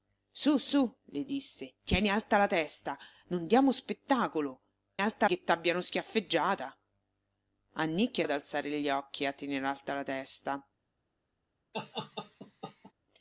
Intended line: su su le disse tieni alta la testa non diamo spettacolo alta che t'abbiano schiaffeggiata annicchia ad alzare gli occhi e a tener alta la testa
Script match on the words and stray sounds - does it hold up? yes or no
no